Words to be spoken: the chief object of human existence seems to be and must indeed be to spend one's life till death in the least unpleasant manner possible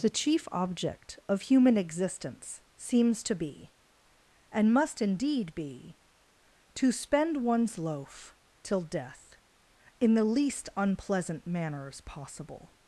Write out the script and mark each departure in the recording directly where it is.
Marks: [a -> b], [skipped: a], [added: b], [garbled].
the chief object of human existence seems to be and must indeed be to spend one's [life -> loaf] till death in the least unpleasant [manner -> manners] possible